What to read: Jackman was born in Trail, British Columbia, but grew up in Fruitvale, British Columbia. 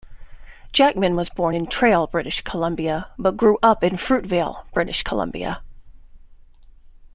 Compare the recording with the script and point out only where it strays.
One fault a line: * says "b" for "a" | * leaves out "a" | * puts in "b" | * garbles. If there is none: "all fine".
all fine